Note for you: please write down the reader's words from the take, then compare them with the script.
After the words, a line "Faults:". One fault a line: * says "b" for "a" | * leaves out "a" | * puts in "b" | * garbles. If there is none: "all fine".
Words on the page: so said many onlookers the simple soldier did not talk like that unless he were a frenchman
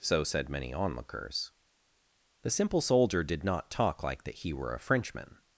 so said many onlookers the simple soldier did not talk like that he were a frenchman
Faults:
* leaves out "unless"